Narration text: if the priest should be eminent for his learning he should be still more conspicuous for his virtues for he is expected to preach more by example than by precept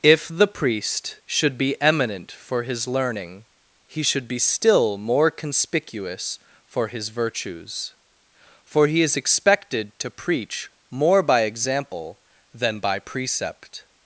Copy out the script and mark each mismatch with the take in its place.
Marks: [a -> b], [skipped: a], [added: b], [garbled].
if the priest should be eminent for his learning he should be still more conspicuous for his virtues for he is expected to preach more by example than by precept